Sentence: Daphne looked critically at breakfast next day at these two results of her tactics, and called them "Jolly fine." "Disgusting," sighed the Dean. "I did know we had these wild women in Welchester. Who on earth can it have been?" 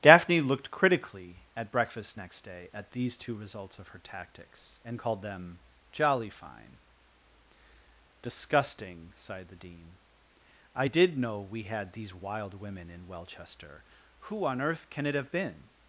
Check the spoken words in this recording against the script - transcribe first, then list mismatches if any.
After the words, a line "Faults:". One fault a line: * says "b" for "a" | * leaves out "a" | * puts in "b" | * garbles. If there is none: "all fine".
Daphne looked critically at breakfast next day at these two results of her tactics, and called them "Jolly fine." "Disgusting," sighed the Dean. "I did know we had these wild women in Welchester. Who on earth can it have been?"
Faults:
all fine